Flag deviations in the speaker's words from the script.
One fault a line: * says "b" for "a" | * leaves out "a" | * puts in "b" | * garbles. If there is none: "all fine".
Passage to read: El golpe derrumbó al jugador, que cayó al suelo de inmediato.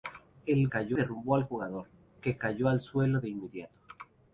* says "cayó" for "golpe"